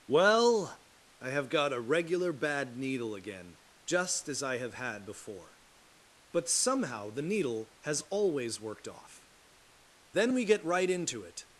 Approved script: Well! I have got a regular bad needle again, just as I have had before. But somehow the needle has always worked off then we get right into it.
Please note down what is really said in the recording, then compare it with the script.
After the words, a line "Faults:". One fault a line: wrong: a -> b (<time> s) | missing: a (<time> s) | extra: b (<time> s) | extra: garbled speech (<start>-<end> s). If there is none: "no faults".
Well! I have got a regular bad needle again, just as I have had before. But somehow the needle has always worked off then we get right into it.
Faults:
no faults